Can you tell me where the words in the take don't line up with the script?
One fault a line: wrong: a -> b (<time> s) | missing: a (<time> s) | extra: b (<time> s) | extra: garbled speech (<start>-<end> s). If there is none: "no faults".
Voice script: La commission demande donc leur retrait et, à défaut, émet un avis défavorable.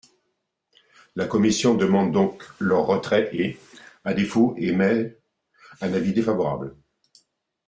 no faults